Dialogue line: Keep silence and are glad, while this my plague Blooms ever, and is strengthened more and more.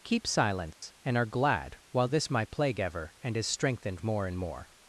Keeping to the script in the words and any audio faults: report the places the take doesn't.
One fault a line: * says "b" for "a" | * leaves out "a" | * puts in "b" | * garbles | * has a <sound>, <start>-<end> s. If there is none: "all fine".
* has a dropout, 0.7-0.8 s
* leaves out "Blooms"